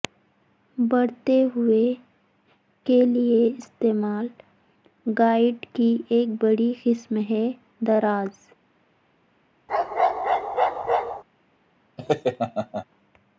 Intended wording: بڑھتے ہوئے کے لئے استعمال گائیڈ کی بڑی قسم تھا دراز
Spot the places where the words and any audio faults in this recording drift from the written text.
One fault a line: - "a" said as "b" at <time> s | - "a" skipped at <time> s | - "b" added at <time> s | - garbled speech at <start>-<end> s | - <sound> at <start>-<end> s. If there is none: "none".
- "ایک" added at 6.1 s
- "تھا" said as "ہے" at 7.3 s
- bark at 9.7-11.2 s
- laugh at 12.0-12.9 s